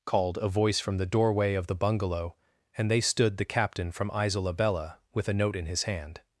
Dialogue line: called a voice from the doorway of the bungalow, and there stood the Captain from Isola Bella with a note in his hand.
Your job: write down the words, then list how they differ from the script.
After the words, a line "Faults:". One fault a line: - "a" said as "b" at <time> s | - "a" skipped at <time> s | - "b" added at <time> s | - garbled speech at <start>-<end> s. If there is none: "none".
called a voice from the doorway of the bungalow, and they stood the Captain from Isola Bella with a note in his hand.
Faults:
- "there" said as "they" at 2.9 s